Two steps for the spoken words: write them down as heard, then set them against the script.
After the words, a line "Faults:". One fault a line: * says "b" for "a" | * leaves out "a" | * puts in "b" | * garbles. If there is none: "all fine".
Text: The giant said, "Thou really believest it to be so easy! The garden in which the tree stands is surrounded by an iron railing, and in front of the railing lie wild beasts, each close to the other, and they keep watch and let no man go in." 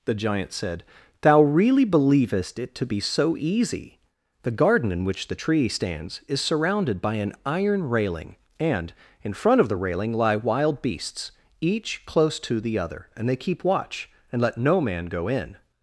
The giant said, "Thou really believest it to be so easy! The garden in which the tree stands is surrounded by an iron railing, and in front of the railing lie wild beasts, each close to the other, and they keep watch and let no man go in."
Faults:
all fine